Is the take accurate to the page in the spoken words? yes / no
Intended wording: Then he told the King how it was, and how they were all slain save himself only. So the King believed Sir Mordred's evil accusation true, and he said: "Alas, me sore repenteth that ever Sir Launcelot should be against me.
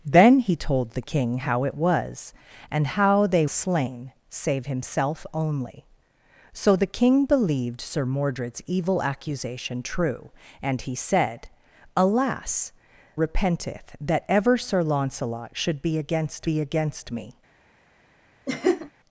no